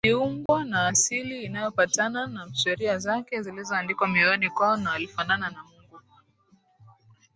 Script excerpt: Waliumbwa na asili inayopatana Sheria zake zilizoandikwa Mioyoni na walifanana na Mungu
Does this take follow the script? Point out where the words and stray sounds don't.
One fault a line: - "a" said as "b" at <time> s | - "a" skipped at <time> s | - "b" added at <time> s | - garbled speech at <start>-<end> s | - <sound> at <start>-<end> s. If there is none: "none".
- dropout at 0.5-0.5 s
- "na" added at 2.3 s
- "kwao" added at 4.5 s